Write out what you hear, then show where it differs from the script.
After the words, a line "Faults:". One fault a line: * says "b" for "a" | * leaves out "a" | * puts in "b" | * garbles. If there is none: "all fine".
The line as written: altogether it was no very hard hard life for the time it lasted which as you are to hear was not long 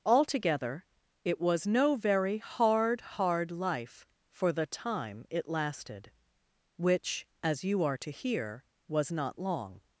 altogether it was no very hard hard life for the time it lasted which as you are to hear was not long
Faults:
all fine